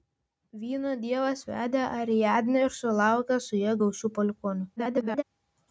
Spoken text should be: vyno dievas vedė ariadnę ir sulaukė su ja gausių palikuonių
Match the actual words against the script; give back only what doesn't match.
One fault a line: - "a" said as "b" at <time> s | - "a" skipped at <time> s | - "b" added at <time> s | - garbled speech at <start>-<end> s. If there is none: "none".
- garbled speech at 4.8-5.2 s